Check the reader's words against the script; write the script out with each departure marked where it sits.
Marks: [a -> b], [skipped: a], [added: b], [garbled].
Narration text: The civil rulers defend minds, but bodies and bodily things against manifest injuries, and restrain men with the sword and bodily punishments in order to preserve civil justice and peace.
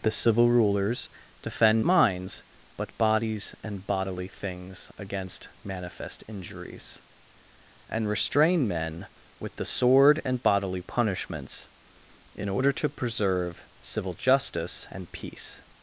The civil rulers defend minds, but bodies and bodily things against manifest injuries, and restrain men with the sword and bodily punishments in order to preserve civil justice and peace.